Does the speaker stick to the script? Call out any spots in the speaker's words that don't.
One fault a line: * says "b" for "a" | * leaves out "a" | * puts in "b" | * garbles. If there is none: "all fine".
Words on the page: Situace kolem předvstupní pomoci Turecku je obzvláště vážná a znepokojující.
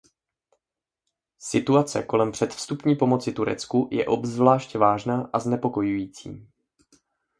all fine